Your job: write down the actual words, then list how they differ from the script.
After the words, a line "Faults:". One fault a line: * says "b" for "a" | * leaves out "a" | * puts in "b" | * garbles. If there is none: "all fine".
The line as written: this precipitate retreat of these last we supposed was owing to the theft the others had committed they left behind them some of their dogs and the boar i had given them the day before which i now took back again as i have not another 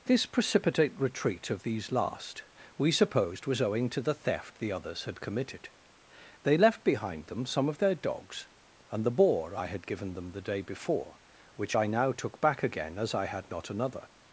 this precipitate retreat of these last we supposed was owing to the theft the others had committed they left behind them some of their dogs and the boar i had given them the day before which i now took back again as i had not another
Faults:
* says "had" for "have"